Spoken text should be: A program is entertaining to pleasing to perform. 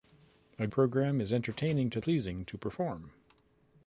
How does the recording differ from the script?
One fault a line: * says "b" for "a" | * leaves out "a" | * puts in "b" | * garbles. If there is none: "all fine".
all fine